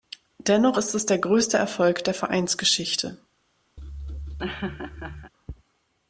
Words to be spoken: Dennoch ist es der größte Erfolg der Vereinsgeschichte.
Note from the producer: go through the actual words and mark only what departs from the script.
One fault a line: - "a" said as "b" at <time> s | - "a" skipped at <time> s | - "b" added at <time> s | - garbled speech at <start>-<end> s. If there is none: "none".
none